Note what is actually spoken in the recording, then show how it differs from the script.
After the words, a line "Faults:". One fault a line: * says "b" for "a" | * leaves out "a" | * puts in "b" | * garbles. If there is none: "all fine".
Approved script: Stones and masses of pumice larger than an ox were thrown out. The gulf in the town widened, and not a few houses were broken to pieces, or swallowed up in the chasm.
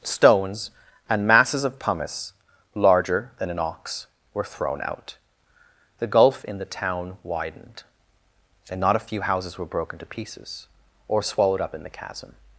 Stones and masses of pumice larger than an ox were thrown out. The gulf in the town widened, and not a few houses were broken to pieces, or swallowed up in the chasm.
Faults:
all fine